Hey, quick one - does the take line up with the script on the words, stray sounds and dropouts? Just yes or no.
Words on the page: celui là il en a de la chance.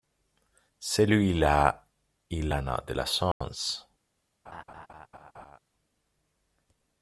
no